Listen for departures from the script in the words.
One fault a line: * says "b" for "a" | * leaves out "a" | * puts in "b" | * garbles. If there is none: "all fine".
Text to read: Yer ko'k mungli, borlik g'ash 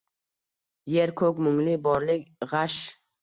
all fine